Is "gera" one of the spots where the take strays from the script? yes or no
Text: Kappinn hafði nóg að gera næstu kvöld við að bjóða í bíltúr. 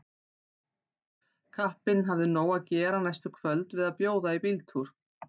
no